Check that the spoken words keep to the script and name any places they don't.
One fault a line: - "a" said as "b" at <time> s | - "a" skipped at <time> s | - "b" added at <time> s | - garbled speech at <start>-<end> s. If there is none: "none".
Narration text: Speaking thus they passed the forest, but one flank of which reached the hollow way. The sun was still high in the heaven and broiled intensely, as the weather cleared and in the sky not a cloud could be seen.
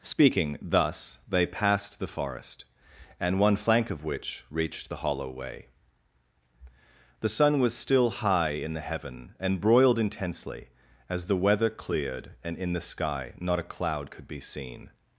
- "but" said as "and" at 3.2 s